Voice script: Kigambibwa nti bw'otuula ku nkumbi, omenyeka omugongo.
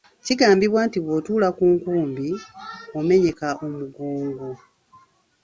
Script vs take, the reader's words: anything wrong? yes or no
no